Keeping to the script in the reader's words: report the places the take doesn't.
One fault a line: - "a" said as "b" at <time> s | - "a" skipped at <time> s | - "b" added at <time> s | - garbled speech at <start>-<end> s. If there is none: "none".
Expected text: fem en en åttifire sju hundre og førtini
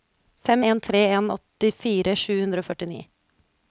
- "tre" added at 0.8 s